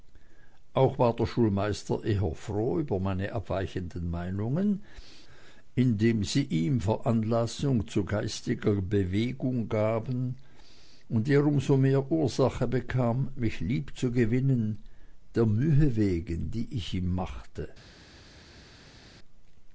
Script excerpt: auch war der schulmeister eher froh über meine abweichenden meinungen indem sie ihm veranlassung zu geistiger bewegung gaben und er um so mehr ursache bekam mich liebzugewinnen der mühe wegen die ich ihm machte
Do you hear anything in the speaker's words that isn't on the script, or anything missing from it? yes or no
no